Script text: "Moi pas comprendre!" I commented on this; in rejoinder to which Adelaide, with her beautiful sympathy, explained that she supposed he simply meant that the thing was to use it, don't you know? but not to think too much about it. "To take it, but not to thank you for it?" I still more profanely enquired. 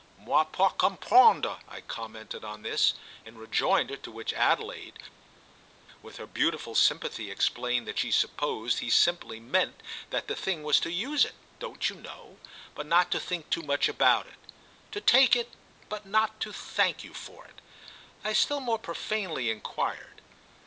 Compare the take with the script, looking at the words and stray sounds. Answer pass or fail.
pass